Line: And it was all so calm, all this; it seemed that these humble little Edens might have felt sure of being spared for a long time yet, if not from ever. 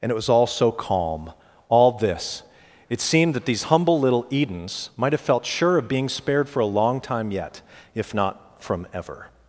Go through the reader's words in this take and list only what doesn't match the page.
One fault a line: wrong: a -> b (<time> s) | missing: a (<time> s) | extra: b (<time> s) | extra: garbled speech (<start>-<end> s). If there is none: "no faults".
no faults